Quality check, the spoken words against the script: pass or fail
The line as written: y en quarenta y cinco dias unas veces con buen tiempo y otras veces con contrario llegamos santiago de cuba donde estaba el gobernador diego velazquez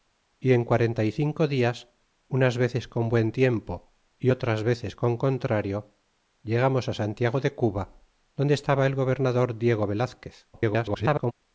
fail